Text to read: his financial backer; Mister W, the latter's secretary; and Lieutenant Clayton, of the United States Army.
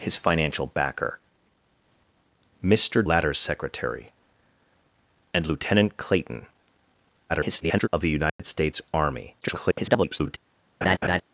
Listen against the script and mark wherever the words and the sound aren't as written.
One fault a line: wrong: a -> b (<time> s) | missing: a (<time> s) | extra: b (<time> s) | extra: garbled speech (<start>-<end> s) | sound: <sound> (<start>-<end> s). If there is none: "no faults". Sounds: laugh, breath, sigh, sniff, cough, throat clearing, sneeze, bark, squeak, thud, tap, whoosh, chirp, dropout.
missing: W the (3.0 s)
extra: garbled speech (7.3-7.9 s)
sound: dropout (8.3-8.4 s)
extra: garbled speech (9.4-10.4 s)
sound: laugh (10.8-11.2 s)